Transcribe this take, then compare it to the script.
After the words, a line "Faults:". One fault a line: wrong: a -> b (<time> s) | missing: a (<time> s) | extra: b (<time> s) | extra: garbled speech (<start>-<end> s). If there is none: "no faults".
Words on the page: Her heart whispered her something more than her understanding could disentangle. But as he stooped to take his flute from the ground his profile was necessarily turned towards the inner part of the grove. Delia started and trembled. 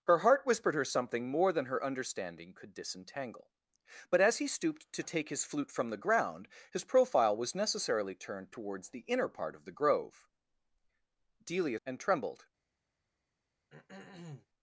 Her heart whispered her something more than her understanding could disentangle. But as he stooped to take his flute from the ground his profile was necessarily turned towards the inner part of the grove. Delia and trembled.
Faults:
missing: started (11.8 s)